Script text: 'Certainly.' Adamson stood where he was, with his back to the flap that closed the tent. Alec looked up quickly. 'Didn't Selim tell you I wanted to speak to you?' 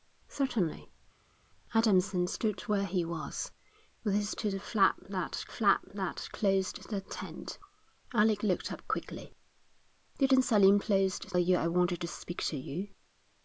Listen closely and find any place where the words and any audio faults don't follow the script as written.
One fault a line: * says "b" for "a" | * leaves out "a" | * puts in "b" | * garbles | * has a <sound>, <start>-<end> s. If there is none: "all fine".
* leaves out "back"
* puts in "flap that"
* says "closed" for "tell"